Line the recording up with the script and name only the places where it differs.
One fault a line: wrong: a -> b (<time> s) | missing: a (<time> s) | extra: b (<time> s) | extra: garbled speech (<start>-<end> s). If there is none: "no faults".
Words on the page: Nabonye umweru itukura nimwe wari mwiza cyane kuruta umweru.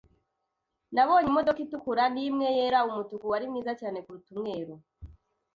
wrong: umweru -> imodoka (1.3 s)
extra: yera Umutuku (2.5 s)